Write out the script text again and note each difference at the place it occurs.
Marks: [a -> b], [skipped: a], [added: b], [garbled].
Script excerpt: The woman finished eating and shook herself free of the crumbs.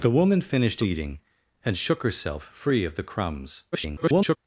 The woman finished eating and shook herself free of the crumbs. [garbled]